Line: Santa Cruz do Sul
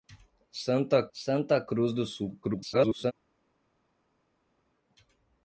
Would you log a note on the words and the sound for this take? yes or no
yes